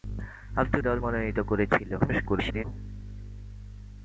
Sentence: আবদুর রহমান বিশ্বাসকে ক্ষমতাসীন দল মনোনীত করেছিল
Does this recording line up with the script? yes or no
no